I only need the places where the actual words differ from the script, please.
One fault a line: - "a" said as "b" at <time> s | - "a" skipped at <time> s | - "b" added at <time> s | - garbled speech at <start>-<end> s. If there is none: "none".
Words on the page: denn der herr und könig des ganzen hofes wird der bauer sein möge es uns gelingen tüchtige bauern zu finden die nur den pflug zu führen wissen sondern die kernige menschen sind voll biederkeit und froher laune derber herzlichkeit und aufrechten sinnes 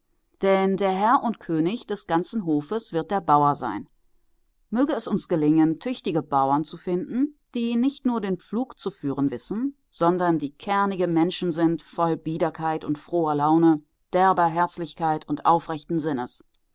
- "nicht" added at 7.8 s